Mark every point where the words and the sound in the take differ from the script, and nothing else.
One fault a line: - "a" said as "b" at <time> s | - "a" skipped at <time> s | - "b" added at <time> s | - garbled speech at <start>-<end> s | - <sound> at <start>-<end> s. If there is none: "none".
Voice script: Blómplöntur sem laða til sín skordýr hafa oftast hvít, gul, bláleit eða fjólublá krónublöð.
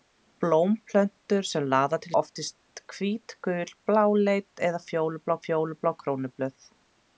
- "sín skordýr hafa" skipped at 2.1 s
- "fjólublá" added at 5.4 s